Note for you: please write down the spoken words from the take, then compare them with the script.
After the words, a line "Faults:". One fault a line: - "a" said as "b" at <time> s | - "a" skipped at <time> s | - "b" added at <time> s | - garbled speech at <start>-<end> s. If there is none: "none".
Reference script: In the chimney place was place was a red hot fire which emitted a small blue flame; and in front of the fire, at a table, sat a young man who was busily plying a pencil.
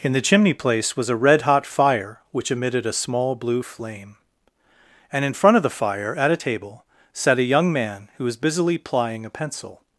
In the chimney place was a red hot fire which emitted a small blue flame; and in front of the fire, at a table, sat a young man who was busily plying a pencil.
Faults:
- "place was" skipped at 1.1 s